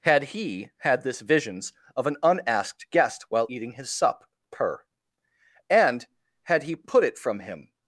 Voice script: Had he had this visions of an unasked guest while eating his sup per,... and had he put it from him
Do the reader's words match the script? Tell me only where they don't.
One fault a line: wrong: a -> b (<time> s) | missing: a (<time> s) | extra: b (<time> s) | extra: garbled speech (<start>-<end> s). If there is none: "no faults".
no faults